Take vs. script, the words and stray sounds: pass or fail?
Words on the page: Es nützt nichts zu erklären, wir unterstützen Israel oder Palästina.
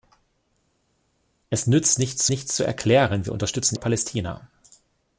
fail